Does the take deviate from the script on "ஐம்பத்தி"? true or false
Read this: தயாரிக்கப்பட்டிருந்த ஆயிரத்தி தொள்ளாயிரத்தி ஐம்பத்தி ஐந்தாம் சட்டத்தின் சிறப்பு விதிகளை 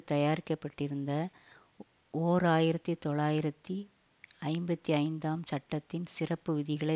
false